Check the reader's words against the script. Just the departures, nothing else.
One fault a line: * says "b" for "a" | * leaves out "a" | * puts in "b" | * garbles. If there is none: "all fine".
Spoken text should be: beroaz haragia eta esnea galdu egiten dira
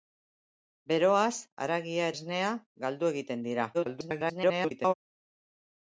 * leaves out "eta"
* garbles